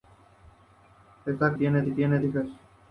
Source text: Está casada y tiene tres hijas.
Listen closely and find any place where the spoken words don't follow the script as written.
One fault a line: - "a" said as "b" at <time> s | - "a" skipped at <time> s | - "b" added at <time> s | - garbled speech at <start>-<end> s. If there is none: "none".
- "casada" said as "tiene" at 1.5 s
- "tres" skipped at 2.2 s